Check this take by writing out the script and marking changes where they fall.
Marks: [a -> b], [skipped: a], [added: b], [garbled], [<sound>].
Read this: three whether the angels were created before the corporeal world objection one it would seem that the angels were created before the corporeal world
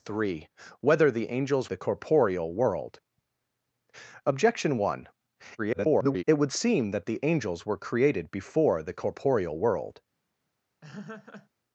three whether the angels [skipped: were created before] the corporeal world objection one [garbled] it would seem that the angels were created before the corporeal world [laugh]